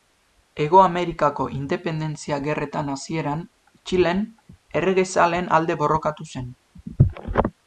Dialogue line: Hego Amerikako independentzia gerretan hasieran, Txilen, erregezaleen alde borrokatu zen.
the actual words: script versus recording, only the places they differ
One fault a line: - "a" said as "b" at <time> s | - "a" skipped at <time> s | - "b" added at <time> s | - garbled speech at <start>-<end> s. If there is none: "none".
none